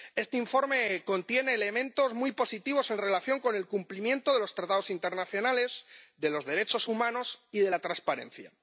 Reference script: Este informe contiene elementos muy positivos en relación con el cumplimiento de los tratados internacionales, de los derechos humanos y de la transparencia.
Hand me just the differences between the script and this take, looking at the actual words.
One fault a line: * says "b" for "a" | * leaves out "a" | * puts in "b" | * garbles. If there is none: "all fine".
all fine